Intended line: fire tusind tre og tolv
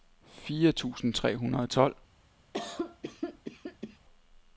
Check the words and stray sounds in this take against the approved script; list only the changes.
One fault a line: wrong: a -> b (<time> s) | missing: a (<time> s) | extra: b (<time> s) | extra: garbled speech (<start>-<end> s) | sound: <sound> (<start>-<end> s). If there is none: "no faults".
extra: hundrede (1.4 s)
sound: cough (2.5-4.0 s)